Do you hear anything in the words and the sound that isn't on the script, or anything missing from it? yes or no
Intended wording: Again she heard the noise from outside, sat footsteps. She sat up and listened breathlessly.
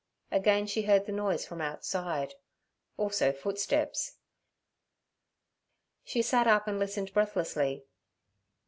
yes